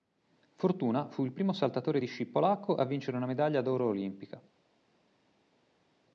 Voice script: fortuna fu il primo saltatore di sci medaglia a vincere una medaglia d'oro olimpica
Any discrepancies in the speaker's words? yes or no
yes